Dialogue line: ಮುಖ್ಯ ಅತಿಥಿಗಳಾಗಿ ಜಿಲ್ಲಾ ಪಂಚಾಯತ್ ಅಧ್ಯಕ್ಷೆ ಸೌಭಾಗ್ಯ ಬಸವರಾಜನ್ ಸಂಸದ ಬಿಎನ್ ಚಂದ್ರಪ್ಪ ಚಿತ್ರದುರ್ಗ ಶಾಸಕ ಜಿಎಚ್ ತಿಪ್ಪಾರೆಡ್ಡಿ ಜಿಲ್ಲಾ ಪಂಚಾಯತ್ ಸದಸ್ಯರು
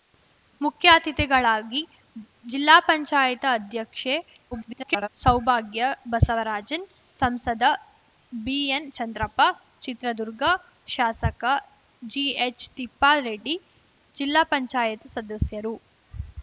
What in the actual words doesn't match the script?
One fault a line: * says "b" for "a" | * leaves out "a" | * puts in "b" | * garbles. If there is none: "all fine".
* garbles